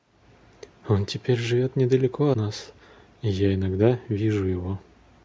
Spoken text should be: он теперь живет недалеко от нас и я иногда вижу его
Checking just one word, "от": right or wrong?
wrong